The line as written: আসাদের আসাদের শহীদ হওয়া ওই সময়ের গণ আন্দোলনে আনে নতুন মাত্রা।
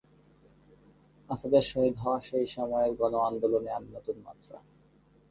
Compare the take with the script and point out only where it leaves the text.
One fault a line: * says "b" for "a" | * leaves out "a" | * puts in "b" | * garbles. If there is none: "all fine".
* leaves out "আসাদের"
* says "সেই" for "ওই"